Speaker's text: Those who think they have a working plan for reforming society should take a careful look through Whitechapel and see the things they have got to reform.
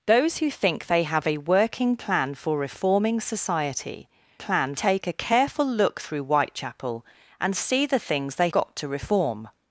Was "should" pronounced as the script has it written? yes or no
no